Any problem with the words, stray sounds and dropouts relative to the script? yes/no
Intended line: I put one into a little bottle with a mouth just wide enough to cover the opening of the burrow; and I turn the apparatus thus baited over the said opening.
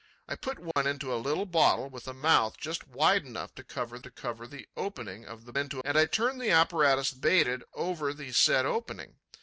yes